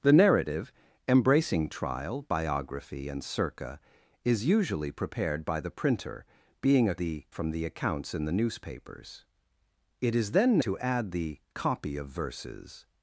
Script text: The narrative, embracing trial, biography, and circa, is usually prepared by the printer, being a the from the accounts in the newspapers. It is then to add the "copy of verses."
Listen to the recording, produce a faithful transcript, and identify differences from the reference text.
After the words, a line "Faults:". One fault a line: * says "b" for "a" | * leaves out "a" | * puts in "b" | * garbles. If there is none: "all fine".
The narrative, embracing trial, biography, and circa, is usually prepared by the printer, being a the from the accounts in the newspapers. It is then to add the "copy of verses."
Faults:
all fine